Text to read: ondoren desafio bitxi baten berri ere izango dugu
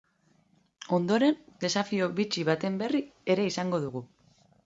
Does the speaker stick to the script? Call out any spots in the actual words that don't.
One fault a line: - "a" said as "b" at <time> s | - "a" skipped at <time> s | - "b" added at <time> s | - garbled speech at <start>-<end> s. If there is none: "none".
none